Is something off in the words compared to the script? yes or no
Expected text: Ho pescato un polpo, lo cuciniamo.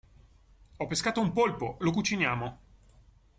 no